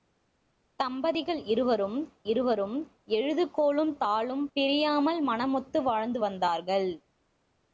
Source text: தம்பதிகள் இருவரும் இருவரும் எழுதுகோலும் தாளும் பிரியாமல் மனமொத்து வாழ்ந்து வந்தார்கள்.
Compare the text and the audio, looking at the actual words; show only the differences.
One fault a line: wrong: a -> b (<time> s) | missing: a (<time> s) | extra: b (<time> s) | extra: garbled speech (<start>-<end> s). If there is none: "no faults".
no faults